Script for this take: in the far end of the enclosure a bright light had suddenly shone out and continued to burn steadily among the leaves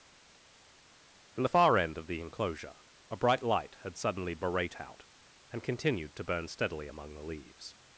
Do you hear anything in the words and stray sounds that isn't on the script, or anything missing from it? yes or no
yes